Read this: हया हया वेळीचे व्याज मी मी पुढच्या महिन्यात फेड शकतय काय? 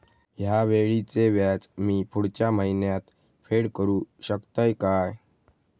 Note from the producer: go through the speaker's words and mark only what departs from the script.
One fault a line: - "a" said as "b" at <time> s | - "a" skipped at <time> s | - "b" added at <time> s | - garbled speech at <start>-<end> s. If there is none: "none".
- "हया" skipped at 0.6 s
- "मी" skipped at 2.0 s
- "करू" added at 3.8 s